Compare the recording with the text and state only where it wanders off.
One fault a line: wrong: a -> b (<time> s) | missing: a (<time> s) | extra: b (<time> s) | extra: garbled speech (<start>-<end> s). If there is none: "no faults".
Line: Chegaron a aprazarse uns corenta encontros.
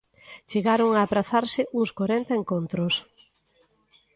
no faults